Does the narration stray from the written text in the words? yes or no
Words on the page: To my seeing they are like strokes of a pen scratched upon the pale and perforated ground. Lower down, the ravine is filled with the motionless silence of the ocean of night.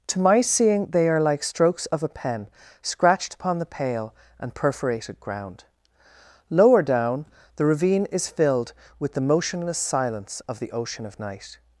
no